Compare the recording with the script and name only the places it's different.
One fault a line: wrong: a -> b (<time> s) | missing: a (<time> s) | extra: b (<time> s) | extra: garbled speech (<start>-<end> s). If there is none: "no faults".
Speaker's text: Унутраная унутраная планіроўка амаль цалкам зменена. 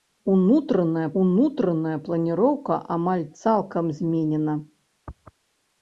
no faults